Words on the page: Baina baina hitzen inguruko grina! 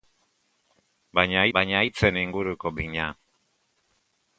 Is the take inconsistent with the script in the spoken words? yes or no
no